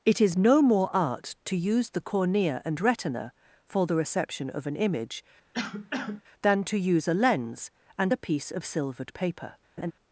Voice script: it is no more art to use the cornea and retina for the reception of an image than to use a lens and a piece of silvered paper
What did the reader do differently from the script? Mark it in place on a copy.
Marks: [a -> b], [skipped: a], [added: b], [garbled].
it is no more art to use the cornea and retina for the reception of an image than to use a lens and a piece of silvered paper